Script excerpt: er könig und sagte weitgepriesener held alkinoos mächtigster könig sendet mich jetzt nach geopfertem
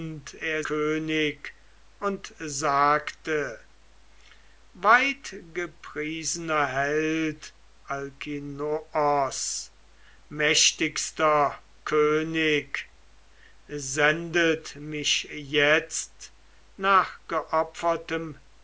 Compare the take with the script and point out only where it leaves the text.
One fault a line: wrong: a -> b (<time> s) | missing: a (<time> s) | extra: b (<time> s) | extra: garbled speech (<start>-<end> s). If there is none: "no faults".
no faults